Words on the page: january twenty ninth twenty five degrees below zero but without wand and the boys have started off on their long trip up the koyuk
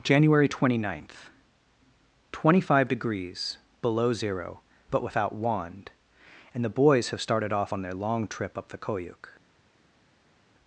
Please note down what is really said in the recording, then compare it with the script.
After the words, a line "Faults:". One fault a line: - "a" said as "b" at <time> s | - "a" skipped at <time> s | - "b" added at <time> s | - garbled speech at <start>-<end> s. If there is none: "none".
january twenty ninth twenty five degrees below zero but without wand and the boys have started off on their long trip up the koyuk
Faults:
none